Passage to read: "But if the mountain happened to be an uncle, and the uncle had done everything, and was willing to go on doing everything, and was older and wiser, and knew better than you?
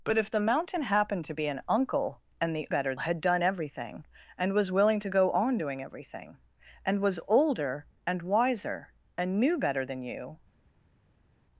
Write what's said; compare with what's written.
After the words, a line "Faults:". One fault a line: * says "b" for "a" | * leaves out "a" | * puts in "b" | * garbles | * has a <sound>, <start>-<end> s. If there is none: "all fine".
"But if the mountain happened to be an uncle, and the better had done everything, and was willing to go on doing everything, and was older and wiser, and knew better than you?
Faults:
* says "better" for "uncle"